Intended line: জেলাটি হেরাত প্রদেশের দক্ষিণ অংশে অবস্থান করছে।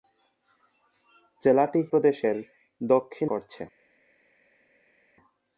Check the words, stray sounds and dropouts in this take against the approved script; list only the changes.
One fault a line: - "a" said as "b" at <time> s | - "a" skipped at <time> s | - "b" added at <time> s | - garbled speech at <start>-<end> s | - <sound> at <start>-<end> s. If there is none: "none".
- "হেরাত" skipped at 1.8 s
- "অংশে অবস্থান" skipped at 3.3 s